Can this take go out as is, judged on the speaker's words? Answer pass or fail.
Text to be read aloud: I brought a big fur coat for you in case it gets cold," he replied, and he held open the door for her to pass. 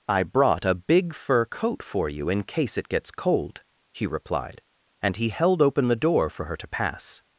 pass